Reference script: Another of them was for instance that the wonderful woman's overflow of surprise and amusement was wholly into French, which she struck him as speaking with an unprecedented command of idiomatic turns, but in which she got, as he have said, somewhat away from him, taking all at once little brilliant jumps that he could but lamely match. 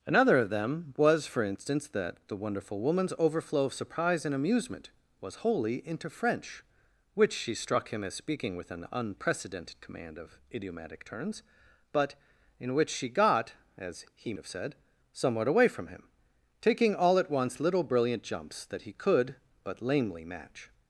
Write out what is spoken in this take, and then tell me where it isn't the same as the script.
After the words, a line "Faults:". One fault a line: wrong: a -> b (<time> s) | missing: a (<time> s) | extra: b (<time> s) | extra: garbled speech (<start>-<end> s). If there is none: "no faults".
Another of them was for instance that the wonderful woman's overflow of surprise and amusement was wholly into French, which she struck him as speaking with an unprecedented command of idiomatic turns, but in which she got, as he have said, somewhat away from him, taking all at once little brilliant jumps that he could but lamely match.
Faults:
no faults